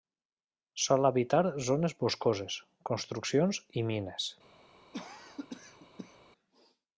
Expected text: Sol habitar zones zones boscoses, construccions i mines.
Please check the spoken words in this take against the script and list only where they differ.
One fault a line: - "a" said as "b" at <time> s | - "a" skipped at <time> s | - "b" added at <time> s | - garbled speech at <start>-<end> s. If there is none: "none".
- "zones" skipped at 1.9 s